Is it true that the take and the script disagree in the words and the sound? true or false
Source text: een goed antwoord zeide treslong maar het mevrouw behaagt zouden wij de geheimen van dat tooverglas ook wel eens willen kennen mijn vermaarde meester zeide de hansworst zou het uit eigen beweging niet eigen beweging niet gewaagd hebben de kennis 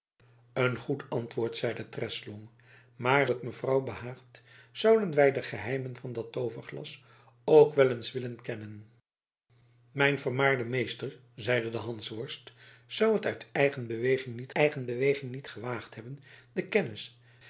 false